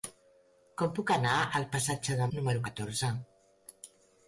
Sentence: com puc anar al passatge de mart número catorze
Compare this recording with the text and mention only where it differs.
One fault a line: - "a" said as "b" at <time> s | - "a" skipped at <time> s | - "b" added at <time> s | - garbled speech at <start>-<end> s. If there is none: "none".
- "mart" skipped at 2.3 s